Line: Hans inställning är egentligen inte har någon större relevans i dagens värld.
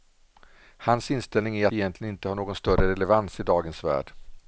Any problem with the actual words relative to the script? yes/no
no